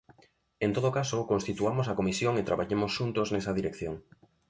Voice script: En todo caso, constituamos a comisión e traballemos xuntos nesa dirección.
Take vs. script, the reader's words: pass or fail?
pass